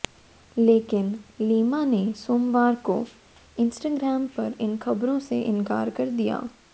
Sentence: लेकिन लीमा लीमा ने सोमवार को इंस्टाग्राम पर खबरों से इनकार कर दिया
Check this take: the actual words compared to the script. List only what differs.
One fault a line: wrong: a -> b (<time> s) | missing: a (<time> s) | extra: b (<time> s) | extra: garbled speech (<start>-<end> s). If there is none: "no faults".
missing: लीमा (1.8 s)
extra: इन (4.6 s)